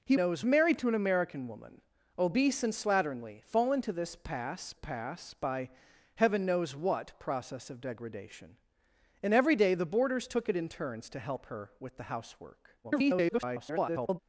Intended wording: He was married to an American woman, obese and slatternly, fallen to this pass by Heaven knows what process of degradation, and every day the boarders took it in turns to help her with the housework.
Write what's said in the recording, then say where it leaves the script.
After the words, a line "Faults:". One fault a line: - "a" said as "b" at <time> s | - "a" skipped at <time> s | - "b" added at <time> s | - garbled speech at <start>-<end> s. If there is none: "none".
He knows married to an American woman, obese and slatternly, fallen to this pass pass by Heaven knows what process of degradation, and every day the boarders took it in turns to help her with the housework. [garbled]
Faults:
- "was" said as "knows" at 0.2 s
- "pass" added at 4.7 s
- garbled speech at 12.8-14.2 s